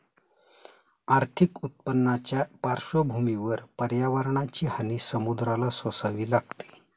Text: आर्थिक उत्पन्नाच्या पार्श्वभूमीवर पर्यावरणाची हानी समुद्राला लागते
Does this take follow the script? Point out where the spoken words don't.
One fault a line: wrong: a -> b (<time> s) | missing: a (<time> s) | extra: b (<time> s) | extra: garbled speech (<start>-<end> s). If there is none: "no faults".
extra: सोसावी (5.7 s)